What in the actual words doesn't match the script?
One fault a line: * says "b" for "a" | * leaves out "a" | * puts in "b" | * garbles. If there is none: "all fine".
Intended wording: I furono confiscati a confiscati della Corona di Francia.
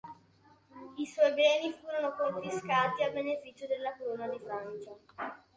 * puts in "suoi beni"
* says "beneficio" for "confiscati"